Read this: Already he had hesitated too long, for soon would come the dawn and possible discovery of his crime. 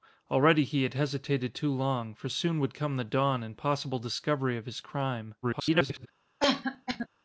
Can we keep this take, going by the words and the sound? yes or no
no